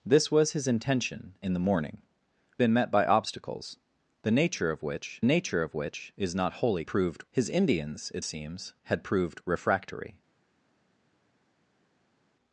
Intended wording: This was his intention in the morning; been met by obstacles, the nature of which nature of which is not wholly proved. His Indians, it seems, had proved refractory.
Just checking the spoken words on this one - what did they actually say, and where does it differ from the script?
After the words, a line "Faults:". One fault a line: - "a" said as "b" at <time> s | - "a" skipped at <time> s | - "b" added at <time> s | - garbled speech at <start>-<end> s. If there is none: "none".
This was his intention in the morning; been met by obstacles, the nature of which nature of which is not wholly proved. His Indians, it seems, had proved refractory.
Faults:
none